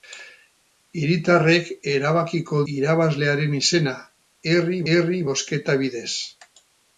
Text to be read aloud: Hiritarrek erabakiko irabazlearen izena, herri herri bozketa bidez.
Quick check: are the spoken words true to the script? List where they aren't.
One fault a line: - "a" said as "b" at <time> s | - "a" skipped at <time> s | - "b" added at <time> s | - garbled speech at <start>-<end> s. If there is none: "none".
none